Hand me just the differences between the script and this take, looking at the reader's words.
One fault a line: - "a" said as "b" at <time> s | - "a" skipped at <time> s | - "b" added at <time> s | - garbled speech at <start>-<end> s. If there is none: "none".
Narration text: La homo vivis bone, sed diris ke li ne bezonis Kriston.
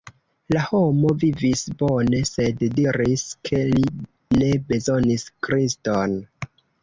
none